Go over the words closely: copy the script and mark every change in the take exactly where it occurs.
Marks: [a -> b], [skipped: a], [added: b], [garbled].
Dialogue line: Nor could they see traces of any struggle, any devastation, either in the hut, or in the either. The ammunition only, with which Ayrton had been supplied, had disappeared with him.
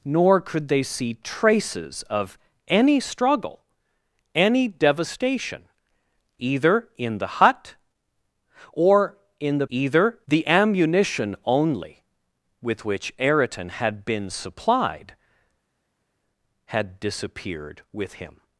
Nor could they see traces of any struggle, any devastation, either in the hut, or in the either. The ammunition only, with which Ayrton had been supplied, had disappeared with him.